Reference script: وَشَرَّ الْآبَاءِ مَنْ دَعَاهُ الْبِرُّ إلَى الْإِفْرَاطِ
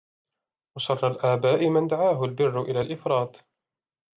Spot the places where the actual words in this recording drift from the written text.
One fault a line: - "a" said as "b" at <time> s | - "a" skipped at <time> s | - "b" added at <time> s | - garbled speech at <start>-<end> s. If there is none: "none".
none